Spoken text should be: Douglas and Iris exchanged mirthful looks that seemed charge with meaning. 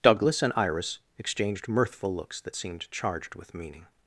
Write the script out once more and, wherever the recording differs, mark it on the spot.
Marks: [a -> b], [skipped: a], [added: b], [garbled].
Douglas and Iris exchanged mirthful looks that seemed [charge -> charged] with meaning.